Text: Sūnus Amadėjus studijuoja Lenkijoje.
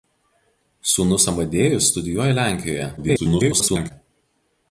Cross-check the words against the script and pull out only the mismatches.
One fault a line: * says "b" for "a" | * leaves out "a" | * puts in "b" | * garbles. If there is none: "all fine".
* garbles